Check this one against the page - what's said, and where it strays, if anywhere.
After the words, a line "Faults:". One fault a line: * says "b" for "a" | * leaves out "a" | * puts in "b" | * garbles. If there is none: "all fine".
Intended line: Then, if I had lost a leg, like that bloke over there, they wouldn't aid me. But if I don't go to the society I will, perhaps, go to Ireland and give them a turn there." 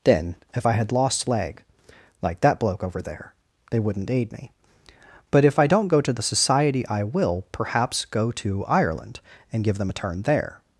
Then, if I had lost leg, like that bloke over there, they wouldn't aid me. But if I don't go to the society I will, perhaps, go to Ireland and give them a turn there."
Faults:
* leaves out "a"